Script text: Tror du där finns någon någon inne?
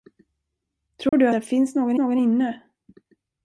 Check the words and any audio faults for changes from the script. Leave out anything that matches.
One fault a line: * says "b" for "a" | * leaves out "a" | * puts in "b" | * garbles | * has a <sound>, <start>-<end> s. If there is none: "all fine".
* has a dropout, 1.1-1.1 s